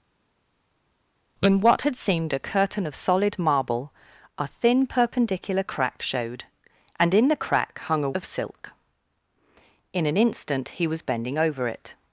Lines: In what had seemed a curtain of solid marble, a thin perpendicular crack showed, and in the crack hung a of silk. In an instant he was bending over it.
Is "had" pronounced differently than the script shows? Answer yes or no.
no